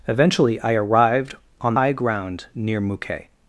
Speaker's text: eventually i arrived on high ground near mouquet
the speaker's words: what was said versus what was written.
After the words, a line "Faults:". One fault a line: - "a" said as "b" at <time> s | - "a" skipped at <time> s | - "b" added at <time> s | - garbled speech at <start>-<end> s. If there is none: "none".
eventually i arrived on high ground near mouquet
Faults:
none